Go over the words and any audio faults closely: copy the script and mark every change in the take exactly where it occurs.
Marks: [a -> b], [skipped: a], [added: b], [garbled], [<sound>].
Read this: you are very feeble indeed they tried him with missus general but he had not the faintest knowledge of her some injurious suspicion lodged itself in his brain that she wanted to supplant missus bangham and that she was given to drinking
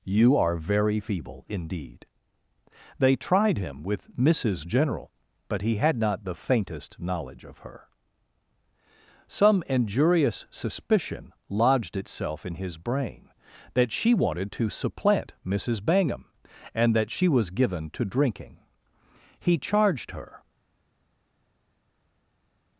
you are very feeble indeed they tried him with missus general but he had not the faintest knowledge of her some injurious suspicion lodged itself in his brain that she wanted to supplant missus bangham and that she was given to drinking [added: he charged her]